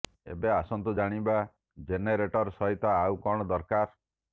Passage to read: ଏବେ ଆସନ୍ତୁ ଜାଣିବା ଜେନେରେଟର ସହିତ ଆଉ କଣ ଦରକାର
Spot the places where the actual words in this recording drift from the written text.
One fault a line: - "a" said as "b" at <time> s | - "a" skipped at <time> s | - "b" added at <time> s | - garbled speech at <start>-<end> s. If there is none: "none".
none